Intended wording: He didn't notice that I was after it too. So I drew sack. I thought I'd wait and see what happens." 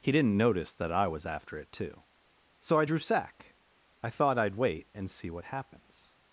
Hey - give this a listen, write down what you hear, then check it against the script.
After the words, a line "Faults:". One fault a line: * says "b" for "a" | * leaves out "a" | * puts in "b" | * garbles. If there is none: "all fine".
He didn't notice that I was after it too. So I drew sack. I thought I'd wait and see what happens."
Faults:
all fine